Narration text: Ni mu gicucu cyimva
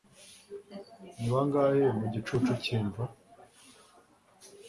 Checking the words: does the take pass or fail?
fail